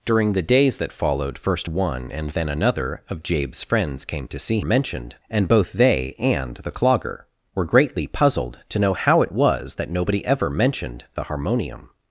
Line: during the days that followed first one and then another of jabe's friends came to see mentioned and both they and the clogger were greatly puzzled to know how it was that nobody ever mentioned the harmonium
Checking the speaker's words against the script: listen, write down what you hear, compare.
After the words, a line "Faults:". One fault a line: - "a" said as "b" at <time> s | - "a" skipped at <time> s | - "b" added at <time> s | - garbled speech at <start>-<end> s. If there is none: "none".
during the days that followed first one and then another of jabe's friends came to see mentioned and both they and the clogger were greatly puzzled to know how it was that nobody ever mentioned the harmonium
Faults:
none